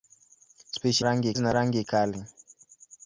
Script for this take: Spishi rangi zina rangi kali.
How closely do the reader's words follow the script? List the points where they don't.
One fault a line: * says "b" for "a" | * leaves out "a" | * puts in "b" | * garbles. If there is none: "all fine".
all fine